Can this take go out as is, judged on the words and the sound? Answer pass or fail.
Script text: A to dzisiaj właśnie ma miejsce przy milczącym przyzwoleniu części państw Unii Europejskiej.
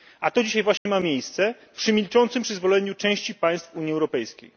fail